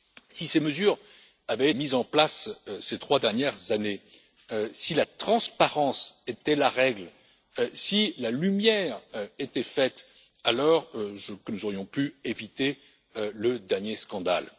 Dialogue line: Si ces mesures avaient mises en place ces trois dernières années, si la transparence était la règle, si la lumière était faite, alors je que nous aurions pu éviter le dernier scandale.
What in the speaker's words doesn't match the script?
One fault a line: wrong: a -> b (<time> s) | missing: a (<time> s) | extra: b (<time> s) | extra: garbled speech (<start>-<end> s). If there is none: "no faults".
no faults